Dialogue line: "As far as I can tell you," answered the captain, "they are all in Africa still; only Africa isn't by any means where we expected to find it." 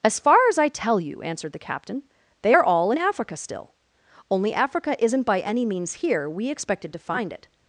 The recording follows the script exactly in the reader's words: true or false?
false